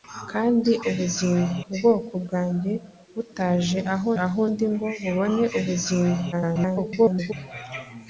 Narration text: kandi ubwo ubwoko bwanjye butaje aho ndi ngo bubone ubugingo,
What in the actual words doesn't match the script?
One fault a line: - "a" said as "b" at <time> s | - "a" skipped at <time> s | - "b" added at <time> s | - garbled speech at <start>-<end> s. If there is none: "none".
- "ubwo" said as "ubugingo" at 0.9 s
- "aho" added at 4.2 s
- garbled speech at 6.3-7.3 s